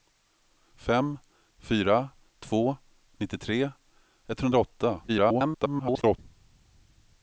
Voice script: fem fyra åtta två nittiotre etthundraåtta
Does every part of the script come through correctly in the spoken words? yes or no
no